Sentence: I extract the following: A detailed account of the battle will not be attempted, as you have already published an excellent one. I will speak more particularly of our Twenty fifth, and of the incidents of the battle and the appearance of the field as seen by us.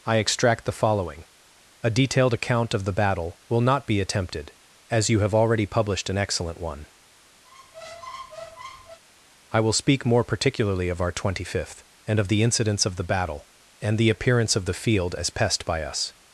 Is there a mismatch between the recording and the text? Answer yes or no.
yes